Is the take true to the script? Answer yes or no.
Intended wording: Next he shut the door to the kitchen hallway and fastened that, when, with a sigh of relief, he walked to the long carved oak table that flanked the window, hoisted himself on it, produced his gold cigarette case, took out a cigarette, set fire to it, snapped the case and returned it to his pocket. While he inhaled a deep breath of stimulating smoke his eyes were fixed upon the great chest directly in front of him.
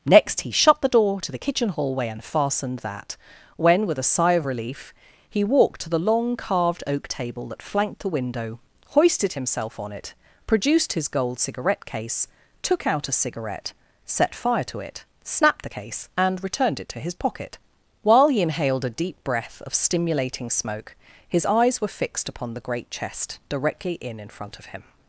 no